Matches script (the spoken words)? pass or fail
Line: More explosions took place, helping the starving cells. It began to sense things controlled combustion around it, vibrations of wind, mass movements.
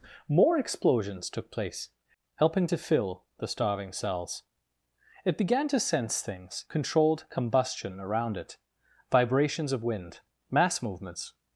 fail